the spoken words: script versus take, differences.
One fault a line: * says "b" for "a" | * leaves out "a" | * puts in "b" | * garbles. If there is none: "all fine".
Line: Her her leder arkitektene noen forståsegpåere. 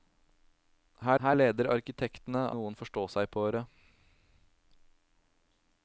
all fine